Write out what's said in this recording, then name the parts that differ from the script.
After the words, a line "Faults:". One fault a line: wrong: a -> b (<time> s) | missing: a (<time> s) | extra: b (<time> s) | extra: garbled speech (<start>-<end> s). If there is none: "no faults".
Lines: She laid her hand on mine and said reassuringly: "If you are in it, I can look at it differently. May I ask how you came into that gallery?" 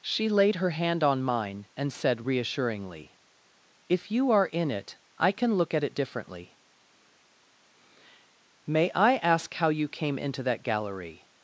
She laid her hand on mine and said reassuringly: "If you are in it, I can look at it differently. May I ask how you came into that gallery?"
Faults:
no faults